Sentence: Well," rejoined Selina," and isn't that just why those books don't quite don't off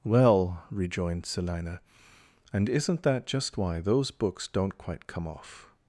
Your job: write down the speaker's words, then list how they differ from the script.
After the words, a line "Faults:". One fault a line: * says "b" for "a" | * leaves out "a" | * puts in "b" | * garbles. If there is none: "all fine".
Well," rejoined Selina," and isn't that just why those books don't quite come off
Faults:
* says "come" for "don't"